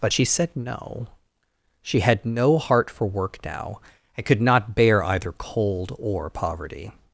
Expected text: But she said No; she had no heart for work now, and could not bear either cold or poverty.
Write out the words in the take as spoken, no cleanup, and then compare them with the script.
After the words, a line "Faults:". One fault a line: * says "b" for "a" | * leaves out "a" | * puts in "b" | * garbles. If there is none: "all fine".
But she said No; she had no heart for work now, and could not bear either cold or poverty.
Faults:
all fine